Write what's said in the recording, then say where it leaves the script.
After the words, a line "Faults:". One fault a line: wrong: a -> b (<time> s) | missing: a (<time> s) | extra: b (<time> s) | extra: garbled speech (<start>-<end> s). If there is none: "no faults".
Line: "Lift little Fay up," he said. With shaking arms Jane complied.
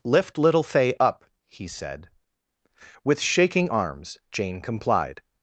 "Lift little Fay up," he said. With shaking arms Jane complied.
Faults:
no faults